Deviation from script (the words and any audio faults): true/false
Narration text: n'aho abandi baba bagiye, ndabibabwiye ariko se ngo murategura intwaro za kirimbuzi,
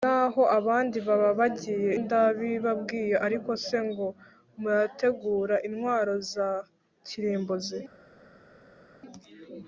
false